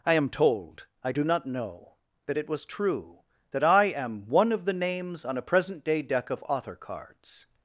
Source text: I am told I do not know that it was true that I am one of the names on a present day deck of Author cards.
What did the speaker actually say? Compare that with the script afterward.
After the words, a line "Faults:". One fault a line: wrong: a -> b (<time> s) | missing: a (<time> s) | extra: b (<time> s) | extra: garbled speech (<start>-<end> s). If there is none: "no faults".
I am told I do not know that it was true that I am one of the names on a present day deck of Author cards.
Faults:
no faults